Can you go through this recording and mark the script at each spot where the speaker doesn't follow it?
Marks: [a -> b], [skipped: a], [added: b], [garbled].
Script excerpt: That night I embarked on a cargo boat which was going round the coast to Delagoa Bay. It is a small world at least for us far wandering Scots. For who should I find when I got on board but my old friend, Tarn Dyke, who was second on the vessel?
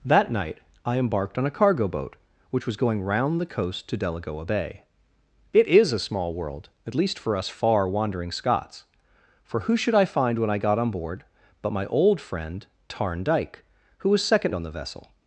That night I embarked on a cargo boat which was going round the coast to Delagoa Bay. It is a small world at least for us far wandering Scots. For who should I find when I got on board but my old friend, Tarn Dyke, who was second on the vessel?